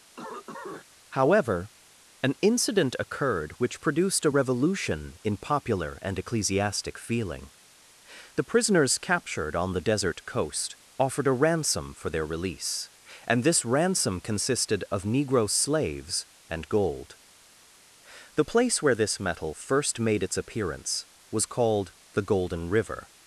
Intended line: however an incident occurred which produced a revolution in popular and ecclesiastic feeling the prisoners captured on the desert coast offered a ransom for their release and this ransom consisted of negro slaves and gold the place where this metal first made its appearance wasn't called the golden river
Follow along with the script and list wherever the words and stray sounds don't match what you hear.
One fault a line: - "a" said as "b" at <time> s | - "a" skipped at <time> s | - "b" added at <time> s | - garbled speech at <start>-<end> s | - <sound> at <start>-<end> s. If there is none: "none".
- cough at 0.2-0.8 s
- "wasn't" said as "was" at 21.3 s